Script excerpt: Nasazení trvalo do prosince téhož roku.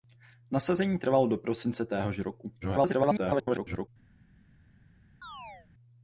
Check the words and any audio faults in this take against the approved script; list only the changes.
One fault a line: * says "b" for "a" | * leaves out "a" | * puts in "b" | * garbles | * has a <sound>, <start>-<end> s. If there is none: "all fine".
* garbles
* has a chirp, 5.2-5.7 s